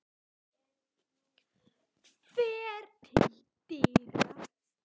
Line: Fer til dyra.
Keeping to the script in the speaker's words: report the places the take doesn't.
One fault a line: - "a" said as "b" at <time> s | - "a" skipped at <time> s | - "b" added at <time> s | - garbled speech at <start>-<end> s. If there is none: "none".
none